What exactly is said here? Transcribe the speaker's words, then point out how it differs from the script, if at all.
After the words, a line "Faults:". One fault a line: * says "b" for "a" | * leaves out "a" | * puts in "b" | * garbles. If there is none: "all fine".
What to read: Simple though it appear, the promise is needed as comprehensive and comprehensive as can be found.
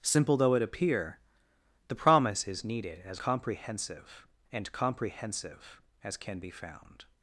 Simple though it appear, the promise is needed as comprehensive and comprehensive as can be found.
Faults:
all fine